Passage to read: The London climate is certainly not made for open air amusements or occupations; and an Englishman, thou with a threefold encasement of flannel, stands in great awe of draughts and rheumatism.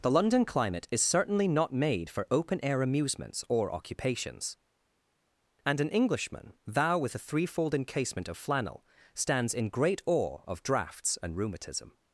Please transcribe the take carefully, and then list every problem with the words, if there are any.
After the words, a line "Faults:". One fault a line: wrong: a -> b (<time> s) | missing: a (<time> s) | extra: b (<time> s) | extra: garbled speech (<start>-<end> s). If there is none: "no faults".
The London climate is certainly not made for open air amusements or occupations; and an Englishman, thou with a threefold encasement of flannel, stands in great awe of draughts and rheumatism.
Faults:
no faults